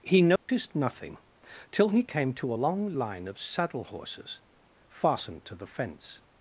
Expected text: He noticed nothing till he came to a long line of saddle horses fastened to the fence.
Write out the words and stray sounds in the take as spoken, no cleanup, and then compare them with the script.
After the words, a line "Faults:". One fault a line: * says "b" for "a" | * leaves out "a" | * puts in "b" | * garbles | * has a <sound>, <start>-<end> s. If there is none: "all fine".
He noticed nothing till he came to long line of saddle horses fastened to the fence.
Faults:
* has a dropout, 0.4-0.5 s
* leaves out "a"